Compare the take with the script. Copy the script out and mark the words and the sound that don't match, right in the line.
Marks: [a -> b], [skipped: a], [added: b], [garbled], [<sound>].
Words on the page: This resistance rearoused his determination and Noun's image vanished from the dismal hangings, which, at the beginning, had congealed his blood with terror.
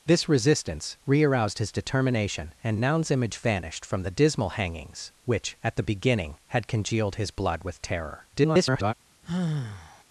This resistance rearoused his determination and Noun's image vanished from the dismal hangings, which, at the beginning, had congealed his blood with terror. [garbled] [sigh]